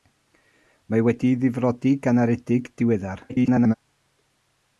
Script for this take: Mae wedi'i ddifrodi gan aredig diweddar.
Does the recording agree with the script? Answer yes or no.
no